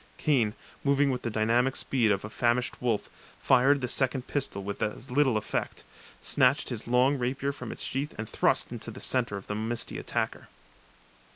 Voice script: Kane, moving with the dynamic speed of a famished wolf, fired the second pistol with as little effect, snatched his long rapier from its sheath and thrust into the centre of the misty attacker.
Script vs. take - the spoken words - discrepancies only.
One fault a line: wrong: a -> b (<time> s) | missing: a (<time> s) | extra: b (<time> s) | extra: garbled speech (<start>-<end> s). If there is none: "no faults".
no faults